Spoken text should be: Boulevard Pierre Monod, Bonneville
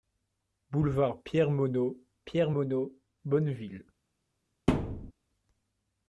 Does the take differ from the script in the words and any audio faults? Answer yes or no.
yes